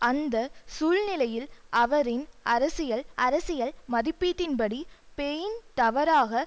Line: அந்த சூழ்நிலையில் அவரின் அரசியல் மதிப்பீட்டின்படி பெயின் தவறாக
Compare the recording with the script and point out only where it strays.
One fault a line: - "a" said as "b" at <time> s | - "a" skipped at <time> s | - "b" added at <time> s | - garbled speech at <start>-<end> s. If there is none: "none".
- "அரசியல்" added at 3.2 s